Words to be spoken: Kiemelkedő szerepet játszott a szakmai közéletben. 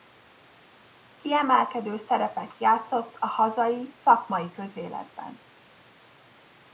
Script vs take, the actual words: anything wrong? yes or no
yes